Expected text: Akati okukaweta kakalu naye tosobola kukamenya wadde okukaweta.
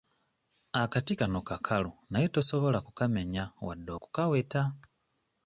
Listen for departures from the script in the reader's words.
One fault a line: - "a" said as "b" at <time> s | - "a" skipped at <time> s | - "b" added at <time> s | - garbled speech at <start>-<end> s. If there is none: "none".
- "okukaweta" said as "kano" at 1.2 s